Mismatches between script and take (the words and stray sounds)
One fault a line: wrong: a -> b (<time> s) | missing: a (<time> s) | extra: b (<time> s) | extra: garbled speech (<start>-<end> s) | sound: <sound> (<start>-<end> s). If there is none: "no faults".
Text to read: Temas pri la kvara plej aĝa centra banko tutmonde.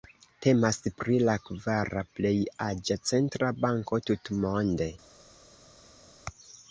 no faults